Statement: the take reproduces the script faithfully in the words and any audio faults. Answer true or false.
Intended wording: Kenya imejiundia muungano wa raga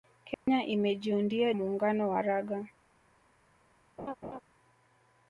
false